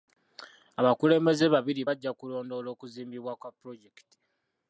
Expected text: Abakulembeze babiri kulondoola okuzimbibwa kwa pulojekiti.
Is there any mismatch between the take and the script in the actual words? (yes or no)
yes